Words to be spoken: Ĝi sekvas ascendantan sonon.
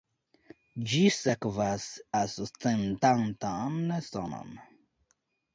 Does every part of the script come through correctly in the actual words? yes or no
yes